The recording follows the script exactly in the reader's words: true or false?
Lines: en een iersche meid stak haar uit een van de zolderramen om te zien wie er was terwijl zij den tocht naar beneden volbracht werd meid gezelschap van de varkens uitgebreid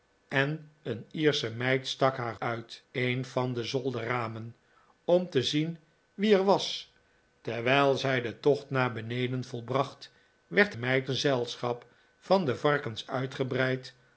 true